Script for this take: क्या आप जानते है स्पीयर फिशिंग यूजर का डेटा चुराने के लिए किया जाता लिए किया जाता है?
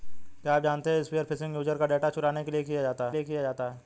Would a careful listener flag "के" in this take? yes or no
no